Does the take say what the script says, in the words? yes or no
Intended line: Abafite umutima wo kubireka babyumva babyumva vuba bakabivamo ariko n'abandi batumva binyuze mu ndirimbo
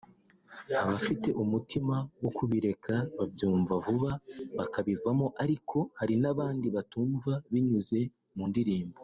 no